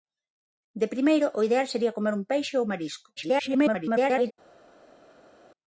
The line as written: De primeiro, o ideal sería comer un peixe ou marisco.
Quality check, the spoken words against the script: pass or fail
fail